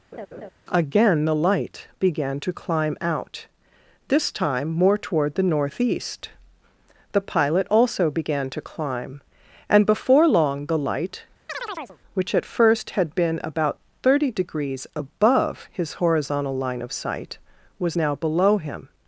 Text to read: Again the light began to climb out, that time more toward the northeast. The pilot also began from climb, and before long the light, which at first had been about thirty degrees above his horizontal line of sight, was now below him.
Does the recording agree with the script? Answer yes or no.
no